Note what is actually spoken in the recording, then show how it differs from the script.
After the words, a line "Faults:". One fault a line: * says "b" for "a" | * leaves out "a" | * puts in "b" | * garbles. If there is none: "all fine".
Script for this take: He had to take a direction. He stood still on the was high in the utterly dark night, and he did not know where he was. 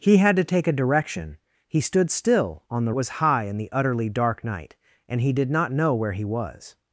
He had to take a direction. He stood still on the was high in the utterly dark night, and he did not know where he was.
Faults:
all fine